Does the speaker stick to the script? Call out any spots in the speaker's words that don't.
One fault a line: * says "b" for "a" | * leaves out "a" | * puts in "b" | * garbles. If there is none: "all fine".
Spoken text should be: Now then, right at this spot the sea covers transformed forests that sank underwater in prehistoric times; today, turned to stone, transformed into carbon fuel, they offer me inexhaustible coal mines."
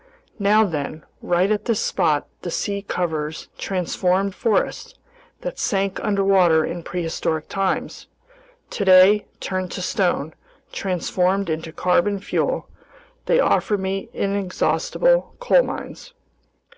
all fine